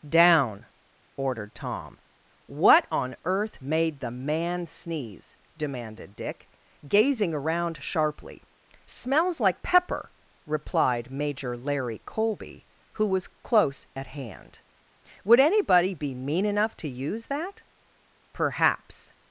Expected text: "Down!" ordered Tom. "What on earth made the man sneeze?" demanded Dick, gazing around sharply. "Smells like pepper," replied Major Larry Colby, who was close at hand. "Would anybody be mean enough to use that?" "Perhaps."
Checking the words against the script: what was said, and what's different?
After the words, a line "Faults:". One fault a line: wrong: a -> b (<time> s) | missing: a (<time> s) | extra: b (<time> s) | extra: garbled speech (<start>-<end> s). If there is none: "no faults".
"Down!" ordered Tom. "What on earth made the man sneeze?" demanded Dick, gazing around sharply. "Smells like pepper," replied Major Larry Colby, who was close at hand. "Would anybody be mean enough to use that?" "Perhaps."
Faults:
no faults